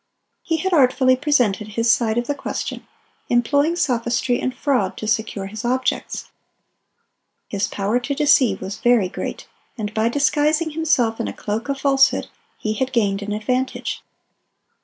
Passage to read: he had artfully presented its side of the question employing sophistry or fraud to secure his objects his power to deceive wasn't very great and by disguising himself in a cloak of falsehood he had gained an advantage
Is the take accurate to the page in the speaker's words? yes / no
no